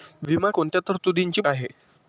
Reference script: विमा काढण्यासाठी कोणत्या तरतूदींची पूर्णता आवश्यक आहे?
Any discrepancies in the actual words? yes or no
yes